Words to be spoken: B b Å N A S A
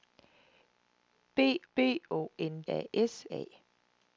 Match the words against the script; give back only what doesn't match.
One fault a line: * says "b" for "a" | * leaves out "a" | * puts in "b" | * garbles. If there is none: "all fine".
all fine